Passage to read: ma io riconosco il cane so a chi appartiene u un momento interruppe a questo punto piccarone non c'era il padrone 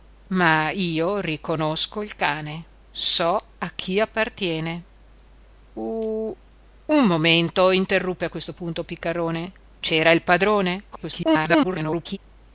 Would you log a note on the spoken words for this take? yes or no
yes